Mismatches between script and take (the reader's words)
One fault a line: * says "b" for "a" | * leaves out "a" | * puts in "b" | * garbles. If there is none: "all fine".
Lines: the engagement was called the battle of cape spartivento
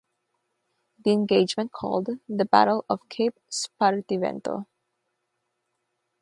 * leaves out "was"